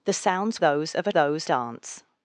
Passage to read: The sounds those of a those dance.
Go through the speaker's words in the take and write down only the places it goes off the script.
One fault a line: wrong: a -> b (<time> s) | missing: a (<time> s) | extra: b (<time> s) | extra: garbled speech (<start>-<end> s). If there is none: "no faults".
no faults